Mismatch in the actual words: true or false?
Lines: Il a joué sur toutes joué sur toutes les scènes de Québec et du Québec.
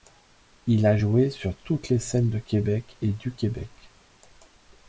true